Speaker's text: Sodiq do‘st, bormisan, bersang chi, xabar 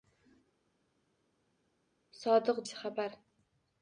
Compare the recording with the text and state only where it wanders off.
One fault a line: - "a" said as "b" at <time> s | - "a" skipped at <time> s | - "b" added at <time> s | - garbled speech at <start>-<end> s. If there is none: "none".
- "do‘st bormisan bersang" skipped at 2.6 s